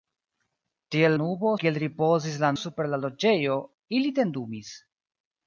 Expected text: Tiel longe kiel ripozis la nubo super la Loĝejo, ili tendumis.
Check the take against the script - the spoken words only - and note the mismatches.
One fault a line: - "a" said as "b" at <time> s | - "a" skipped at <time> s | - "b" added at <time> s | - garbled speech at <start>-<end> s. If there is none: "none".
- "longe" said as "nubo" at 1.2 s
- "nubo" skipped at 2.5 s